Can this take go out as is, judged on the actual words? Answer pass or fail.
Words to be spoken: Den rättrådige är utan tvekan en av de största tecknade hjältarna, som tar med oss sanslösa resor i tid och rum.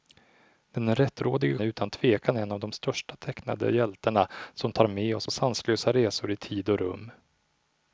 pass